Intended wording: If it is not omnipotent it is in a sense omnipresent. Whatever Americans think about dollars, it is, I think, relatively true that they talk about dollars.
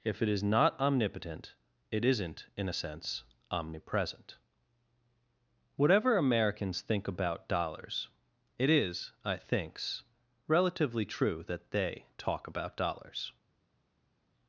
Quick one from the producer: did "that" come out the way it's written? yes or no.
yes